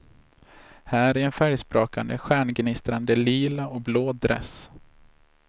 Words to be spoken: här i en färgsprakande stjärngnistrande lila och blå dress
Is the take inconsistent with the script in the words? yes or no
no